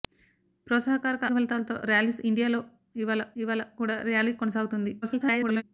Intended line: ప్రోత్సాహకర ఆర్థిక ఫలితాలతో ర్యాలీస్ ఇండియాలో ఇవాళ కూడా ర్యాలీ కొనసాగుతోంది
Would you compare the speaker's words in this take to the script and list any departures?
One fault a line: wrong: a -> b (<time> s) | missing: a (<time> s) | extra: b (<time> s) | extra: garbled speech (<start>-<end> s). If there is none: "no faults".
missing: ఆర్థిక (1.3 s)
extra: ఇవాళ (3.4 s)
extra: garbled speech (5.0-5.6 s)